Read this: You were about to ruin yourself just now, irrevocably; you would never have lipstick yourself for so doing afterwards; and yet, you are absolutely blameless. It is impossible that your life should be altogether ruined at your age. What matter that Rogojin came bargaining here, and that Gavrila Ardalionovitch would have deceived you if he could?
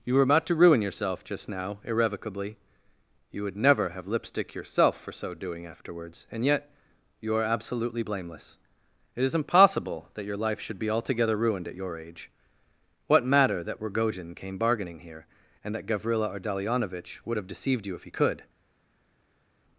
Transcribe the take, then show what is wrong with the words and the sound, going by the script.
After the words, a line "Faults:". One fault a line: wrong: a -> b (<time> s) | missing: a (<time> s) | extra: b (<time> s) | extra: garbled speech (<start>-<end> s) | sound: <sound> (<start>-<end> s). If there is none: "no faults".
You were about to ruin yourself just now, irrevocably; you would never have lipstick yourself for so doing afterwards; and yet, you are absolutely blameless. It is impossible that your life should be altogether ruined at your age. What matter that Rogojin came bargaining here, and that Gavrila Ardalionovitch would have deceived you if he could?
Faults:
no faults